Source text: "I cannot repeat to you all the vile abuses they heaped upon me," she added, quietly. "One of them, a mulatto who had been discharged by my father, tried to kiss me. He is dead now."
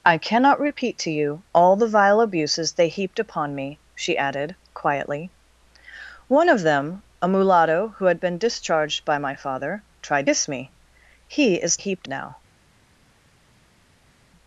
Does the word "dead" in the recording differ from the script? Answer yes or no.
yes